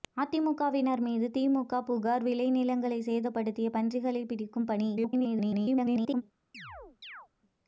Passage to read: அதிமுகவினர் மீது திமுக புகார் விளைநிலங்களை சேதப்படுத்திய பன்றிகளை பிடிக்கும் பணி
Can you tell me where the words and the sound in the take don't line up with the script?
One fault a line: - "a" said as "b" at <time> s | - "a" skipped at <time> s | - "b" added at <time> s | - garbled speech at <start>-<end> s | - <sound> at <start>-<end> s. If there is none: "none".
- garbled speech at 5.0-6.2 s
- chirp at 6.5-7.3 s